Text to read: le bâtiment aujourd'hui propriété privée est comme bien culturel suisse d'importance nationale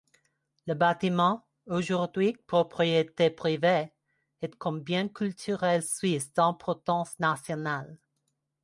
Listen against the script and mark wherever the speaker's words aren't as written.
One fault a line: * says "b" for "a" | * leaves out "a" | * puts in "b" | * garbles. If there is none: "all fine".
all fine